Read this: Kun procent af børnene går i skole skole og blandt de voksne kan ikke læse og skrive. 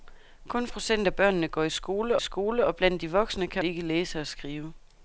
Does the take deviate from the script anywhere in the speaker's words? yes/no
no